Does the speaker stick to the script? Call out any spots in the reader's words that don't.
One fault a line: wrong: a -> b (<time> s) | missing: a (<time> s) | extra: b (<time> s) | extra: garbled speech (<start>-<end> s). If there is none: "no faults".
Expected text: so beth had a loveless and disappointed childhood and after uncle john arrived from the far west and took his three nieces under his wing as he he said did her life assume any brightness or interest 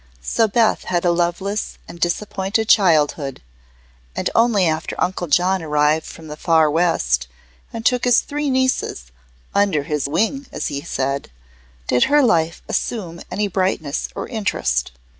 extra: only (4.3 s)
missing: he (10.8 s)